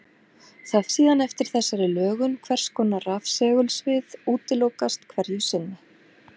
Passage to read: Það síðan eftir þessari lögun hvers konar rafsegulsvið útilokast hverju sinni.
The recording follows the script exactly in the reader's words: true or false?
true